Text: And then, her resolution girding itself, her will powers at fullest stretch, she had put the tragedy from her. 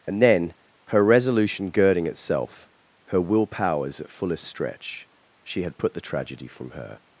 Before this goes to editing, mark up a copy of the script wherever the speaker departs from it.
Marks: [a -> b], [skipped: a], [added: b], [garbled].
And then, her resolution girding itself, her will powers at fullest stretch, she had put the tragedy from her.